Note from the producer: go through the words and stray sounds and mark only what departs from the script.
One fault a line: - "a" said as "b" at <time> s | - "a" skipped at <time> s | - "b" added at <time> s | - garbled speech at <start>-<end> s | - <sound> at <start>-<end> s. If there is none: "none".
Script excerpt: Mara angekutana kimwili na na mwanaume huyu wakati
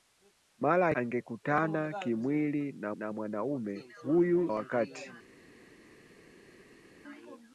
none